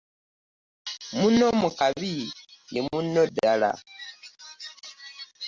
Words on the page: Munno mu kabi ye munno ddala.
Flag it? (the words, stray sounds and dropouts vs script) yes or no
no